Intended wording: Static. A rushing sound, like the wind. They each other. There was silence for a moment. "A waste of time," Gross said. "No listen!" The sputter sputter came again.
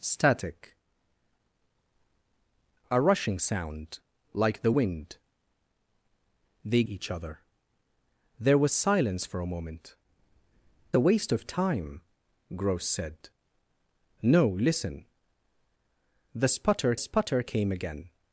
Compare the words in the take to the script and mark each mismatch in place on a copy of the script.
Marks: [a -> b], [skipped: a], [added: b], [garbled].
Static. A rushing sound, like the wind. They each other. There was silence for a moment. "A waste of time," Gross said. "No listen!" The sputter sputter came again.